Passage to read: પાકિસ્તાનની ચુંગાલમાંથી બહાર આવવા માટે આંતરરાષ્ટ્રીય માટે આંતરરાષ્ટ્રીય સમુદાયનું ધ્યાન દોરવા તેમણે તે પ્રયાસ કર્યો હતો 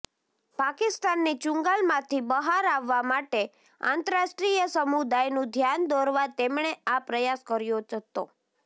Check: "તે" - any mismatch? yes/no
yes